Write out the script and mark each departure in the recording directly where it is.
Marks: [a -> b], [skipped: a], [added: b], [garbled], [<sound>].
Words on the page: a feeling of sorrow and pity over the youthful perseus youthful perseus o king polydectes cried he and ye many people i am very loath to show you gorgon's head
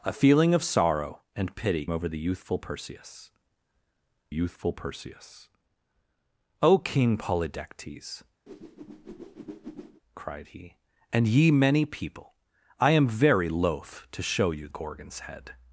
a feeling of sorrow and pity over the youthful perseus youthful perseus o king polydectes [whoosh] cried he and ye many people i am very loath to show you gorgon's head